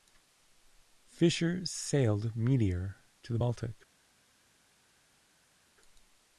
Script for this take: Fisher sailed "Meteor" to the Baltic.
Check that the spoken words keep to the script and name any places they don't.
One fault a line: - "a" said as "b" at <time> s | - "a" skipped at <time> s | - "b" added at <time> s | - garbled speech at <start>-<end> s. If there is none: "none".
none